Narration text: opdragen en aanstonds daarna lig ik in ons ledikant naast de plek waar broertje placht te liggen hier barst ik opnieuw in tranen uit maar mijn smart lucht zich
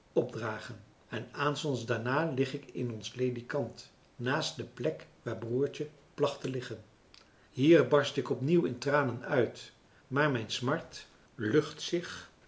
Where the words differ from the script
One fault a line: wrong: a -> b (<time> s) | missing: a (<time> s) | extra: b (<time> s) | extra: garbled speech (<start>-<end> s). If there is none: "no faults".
no faults